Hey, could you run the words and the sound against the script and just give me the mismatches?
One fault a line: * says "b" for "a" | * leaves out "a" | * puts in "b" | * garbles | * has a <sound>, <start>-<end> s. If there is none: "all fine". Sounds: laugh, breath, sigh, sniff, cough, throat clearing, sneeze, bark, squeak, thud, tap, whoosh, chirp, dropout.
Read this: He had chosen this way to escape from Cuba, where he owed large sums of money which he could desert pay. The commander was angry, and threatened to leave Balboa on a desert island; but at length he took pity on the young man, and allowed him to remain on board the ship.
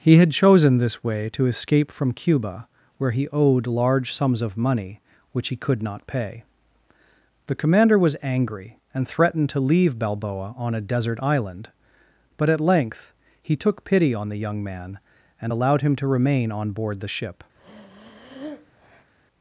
* says "not" for "desert"
* has a breath, 17.6-19.1 s